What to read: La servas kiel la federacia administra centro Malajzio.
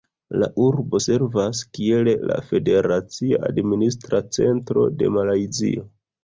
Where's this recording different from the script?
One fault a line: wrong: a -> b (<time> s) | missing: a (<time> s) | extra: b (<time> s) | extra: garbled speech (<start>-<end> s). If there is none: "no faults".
extra: urbo (0.7 s)
extra: de (5.0 s)